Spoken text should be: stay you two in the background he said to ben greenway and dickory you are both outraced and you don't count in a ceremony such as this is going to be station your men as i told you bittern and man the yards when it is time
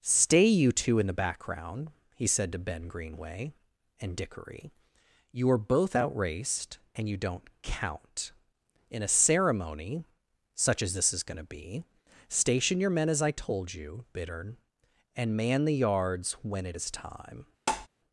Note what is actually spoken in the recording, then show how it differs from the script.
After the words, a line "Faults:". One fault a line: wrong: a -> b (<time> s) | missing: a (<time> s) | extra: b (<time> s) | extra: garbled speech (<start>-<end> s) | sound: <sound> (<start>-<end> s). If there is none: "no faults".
stay you two in the background he said to ben greenway and dickory you are both outraced and you don't count in a ceremony such as this is going to be station your men as i told you bittern and man the yards when it is time
Faults:
sound: tap (17.7-17.9 s)